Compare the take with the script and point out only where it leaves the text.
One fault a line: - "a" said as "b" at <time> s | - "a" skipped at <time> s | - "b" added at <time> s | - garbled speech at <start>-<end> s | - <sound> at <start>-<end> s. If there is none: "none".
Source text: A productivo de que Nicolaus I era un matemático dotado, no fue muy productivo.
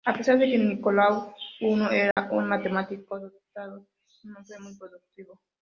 - "productivo" said as "pesar" at 0.1 s
- dropout at 2.1-2.2 s